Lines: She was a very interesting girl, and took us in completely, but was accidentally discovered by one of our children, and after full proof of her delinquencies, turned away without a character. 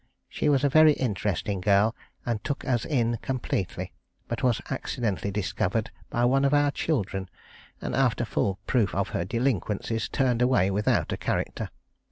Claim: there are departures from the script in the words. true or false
false